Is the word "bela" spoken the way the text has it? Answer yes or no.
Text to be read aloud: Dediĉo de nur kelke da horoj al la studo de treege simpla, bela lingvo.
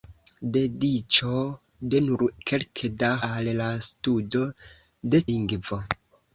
no